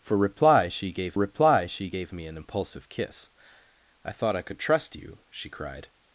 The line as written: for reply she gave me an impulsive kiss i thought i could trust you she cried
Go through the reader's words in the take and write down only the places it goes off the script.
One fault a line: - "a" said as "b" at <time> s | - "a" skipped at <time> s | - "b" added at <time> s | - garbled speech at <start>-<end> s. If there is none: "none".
- "reply she gave" added at 1.2 s